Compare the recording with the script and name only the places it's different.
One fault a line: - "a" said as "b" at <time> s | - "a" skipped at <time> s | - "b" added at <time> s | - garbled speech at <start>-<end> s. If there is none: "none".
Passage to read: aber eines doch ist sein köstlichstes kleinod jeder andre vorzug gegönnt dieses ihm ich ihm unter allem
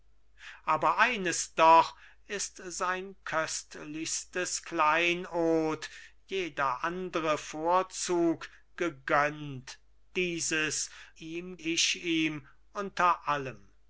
none